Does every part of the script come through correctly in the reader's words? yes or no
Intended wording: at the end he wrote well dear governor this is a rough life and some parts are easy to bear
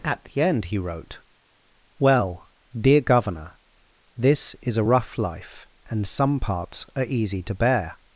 yes